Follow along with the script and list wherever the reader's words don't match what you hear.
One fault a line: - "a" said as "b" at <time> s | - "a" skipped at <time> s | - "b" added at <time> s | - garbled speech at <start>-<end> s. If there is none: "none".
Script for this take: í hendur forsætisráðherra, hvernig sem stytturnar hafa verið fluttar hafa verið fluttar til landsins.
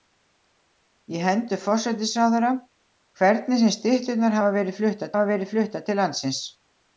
none